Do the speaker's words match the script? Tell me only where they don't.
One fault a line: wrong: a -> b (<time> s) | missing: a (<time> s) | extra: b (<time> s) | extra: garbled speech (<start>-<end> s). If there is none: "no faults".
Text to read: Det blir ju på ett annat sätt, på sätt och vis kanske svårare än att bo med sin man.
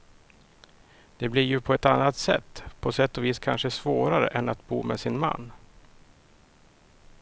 no faults